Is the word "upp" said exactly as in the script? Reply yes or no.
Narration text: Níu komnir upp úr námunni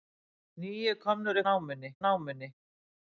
no